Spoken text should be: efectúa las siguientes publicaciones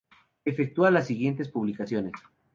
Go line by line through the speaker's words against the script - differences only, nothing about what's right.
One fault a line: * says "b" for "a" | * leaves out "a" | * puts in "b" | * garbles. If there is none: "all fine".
all fine